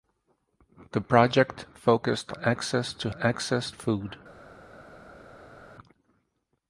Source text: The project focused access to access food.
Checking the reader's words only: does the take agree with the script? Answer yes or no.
yes